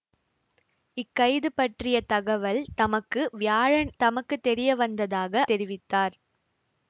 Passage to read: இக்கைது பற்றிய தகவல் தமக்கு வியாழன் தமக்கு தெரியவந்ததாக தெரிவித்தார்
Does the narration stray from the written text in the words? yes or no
no